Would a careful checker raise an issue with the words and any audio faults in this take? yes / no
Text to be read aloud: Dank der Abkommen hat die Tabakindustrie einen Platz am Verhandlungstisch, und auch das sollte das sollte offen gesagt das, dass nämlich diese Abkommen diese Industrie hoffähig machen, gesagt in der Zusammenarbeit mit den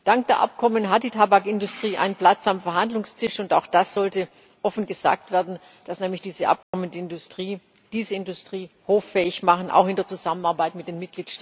yes